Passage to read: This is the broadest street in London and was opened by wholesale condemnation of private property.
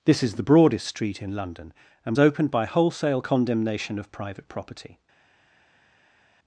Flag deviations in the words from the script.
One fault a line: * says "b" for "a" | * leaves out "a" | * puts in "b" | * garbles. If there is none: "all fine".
* leaves out "was"